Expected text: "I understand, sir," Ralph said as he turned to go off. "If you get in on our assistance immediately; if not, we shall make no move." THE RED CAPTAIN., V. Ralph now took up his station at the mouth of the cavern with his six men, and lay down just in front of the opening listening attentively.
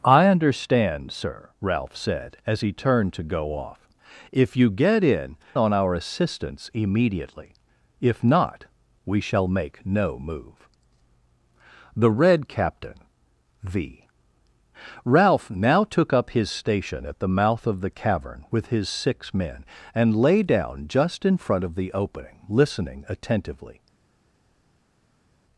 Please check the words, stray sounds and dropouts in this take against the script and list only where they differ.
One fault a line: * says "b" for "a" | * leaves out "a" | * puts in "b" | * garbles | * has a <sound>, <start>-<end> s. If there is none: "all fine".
all fine